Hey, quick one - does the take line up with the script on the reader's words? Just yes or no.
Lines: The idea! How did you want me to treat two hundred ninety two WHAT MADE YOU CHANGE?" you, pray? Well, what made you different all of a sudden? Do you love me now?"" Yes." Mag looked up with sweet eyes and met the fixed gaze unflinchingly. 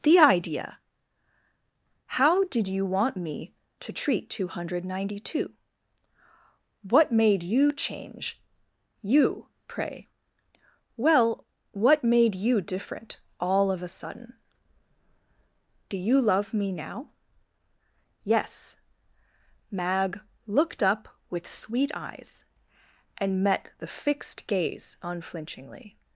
yes